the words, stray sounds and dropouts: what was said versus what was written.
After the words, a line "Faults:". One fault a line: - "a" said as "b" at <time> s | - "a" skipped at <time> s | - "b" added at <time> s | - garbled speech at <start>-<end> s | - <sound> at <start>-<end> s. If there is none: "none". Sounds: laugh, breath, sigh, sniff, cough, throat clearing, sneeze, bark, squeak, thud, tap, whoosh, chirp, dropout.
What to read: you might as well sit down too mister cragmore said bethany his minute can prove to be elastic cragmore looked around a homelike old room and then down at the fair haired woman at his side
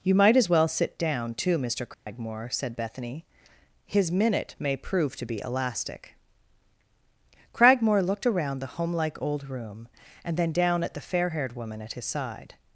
you might as well sit down too mister cragmore said bethany his minute may prove to be elastic cragmore looked around the homelike old room and then down at the fair haired woman at his side
Faults:
- dropout at 1.9-2.1 s
- "can" said as "may" at 4.6 s
- "a" said as "the" at 8.6 s